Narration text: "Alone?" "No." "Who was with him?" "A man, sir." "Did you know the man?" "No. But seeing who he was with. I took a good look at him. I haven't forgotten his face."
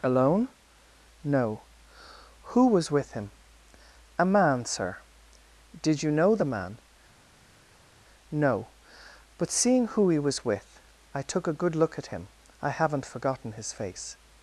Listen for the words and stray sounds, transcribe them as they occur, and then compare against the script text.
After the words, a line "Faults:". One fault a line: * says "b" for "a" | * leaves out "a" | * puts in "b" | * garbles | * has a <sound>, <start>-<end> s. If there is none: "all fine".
"Alone?" "No." "Who was with him?" "A man, sir." "Did you know the man?" "No. But seeing who he was with. I took a good look at him. I haven't forgotten his face."
Faults:
all fine